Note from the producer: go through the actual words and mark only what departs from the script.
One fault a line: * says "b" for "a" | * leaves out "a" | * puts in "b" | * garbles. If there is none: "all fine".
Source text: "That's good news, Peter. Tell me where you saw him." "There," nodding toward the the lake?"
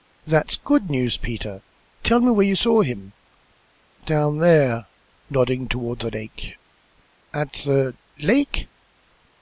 * puts in "Down"
* puts in "lake At"